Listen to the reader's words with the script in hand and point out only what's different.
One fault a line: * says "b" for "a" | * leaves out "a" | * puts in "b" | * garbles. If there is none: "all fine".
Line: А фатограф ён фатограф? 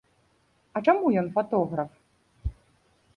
* says "чаму" for "фатограф"